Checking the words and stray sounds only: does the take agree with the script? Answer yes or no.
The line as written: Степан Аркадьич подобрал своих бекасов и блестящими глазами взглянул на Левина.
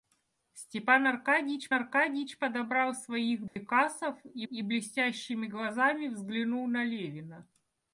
no